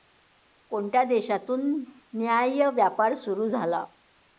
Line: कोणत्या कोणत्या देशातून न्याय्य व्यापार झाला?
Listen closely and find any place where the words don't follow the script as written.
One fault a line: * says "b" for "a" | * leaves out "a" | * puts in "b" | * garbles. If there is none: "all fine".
* leaves out "कोणत्या"
* puts in "सुरू"